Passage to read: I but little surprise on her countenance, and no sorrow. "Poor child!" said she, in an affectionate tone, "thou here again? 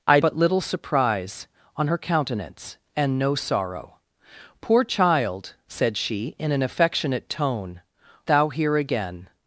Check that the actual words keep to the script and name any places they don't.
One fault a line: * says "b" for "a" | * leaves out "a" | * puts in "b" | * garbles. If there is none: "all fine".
all fine